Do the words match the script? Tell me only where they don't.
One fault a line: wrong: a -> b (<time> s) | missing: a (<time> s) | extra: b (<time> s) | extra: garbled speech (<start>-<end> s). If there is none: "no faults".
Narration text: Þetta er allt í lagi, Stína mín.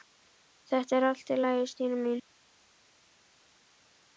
no faults